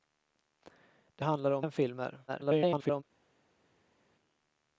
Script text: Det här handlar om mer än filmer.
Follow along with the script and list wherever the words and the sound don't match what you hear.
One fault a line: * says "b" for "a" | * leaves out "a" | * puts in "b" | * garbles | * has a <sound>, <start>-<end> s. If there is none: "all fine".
* leaves out "här"
* leaves out "mer"
* garbles